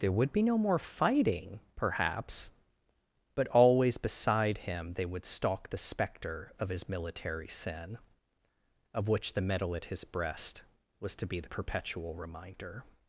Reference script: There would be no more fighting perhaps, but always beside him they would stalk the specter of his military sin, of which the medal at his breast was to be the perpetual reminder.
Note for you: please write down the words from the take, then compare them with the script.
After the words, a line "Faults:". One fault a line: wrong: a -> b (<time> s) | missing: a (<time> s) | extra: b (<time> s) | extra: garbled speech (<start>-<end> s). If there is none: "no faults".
There would be no more fighting perhaps, but always beside him they would stalk the specter of his military sin, of which the medal at his breast was to be the perpetual reminder.
Faults:
no faults